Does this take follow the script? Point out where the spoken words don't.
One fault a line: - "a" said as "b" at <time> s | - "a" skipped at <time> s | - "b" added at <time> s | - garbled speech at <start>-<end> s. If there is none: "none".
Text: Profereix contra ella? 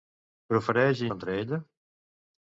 none